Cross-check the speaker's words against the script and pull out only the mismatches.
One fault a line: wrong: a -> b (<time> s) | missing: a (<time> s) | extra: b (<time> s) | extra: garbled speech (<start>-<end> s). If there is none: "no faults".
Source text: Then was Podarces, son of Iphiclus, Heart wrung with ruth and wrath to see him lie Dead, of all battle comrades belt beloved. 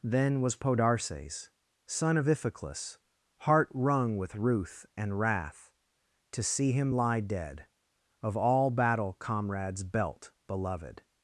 no faults